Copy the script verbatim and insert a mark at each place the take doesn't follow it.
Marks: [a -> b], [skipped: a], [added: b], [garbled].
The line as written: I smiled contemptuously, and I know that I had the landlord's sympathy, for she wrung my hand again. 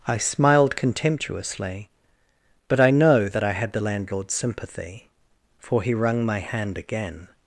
I smiled contemptuously, [and -> but] I know that I had the landlord's sympathy, for [she -> he] wrung my hand again.